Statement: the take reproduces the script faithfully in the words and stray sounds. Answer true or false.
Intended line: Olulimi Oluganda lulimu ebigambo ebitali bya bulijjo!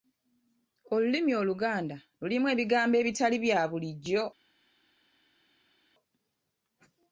true